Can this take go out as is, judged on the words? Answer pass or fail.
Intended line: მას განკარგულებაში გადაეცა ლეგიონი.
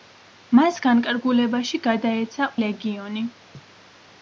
pass